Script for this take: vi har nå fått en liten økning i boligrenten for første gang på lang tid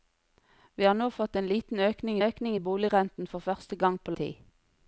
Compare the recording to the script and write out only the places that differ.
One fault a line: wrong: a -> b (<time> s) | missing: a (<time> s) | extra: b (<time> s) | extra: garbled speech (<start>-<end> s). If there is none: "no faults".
extra: økning (2.3 s)
missing: lang (4.2 s)